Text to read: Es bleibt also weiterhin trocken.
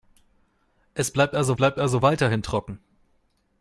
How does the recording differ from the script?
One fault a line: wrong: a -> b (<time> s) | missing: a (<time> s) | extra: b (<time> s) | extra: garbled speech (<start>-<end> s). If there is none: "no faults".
extra: bleibt also (1.5 s)